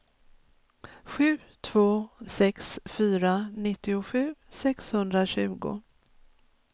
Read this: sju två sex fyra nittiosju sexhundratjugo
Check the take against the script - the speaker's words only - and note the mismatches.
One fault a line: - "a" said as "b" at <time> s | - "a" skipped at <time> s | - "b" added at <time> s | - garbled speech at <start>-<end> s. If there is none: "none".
none